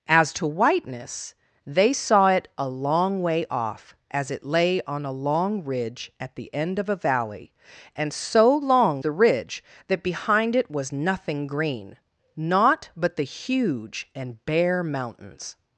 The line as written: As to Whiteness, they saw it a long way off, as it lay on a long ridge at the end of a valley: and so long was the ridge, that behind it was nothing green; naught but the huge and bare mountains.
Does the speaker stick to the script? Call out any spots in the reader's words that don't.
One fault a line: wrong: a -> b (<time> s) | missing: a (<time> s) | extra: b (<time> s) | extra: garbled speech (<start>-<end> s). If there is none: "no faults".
missing: was (9.0 s)